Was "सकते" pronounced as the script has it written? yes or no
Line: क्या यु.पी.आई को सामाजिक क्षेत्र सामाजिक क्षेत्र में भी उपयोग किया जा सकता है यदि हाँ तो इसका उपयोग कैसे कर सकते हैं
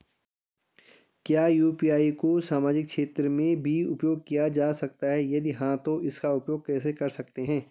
yes